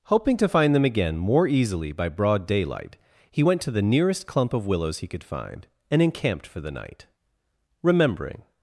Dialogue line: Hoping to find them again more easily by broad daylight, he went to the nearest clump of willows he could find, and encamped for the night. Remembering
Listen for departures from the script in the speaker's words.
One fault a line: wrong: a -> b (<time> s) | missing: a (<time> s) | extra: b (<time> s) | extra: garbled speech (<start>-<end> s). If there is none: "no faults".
no faults